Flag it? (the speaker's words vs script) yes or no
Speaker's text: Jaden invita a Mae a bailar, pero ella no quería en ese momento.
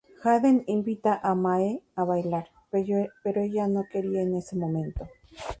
no